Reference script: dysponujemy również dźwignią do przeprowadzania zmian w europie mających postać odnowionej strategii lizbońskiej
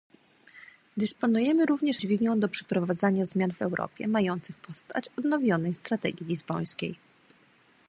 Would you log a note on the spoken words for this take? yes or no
no